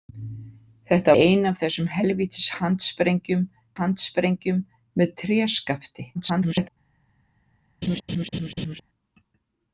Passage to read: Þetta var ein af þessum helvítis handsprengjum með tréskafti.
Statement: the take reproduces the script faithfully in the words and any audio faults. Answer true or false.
false